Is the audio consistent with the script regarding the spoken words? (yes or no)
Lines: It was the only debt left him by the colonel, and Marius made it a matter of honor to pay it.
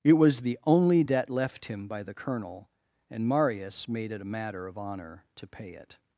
yes